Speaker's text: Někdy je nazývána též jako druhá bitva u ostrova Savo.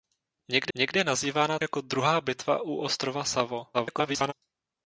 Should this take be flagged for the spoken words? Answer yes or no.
yes